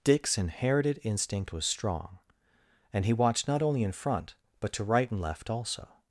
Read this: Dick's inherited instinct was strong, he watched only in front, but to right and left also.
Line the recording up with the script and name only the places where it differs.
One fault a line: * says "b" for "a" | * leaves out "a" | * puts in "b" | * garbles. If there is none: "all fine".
* puts in "and"
* puts in "not"